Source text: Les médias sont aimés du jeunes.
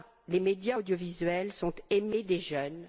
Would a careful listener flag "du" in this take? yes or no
yes